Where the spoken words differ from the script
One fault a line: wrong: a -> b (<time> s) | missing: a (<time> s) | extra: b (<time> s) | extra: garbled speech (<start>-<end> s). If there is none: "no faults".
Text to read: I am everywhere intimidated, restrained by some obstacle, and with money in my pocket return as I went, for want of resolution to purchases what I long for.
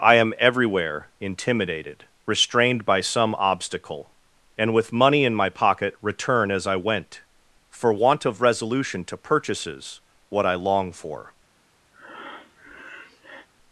no faults